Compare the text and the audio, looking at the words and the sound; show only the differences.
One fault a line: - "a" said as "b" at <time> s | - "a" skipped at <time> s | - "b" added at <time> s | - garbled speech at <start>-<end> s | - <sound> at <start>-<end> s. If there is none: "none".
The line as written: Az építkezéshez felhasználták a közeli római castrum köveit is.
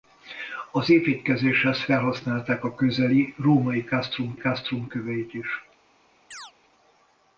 - "castrum" added at 4.4 s
- chirp at 6.3-6.5 s